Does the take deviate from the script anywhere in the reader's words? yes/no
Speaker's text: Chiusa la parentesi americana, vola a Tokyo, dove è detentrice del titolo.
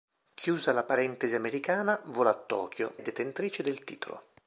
yes